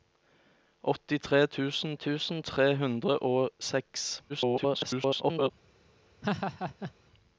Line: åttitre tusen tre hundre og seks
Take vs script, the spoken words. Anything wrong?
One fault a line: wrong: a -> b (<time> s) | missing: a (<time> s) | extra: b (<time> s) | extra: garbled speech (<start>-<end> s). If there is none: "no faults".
extra: tusen (2.0 s)
extra: garbled speech (4.3-5.5 s)